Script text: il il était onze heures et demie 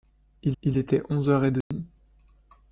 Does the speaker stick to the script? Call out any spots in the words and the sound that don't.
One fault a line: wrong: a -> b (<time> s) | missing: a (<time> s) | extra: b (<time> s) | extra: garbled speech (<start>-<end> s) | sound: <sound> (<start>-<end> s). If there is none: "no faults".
sound: dropout (1.6-1.7 s)